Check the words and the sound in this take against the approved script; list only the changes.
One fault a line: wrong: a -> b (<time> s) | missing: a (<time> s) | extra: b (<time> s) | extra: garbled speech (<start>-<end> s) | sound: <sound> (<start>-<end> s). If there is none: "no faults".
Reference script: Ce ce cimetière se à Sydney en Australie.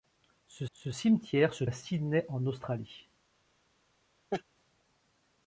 sound: laugh (4.3-4.4 s)